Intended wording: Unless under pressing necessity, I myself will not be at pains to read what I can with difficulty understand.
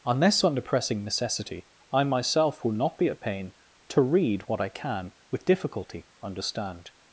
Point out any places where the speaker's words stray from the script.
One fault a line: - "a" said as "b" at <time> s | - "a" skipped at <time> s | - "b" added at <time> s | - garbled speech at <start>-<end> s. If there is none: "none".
- "pains" said as "pain" at 3.2 s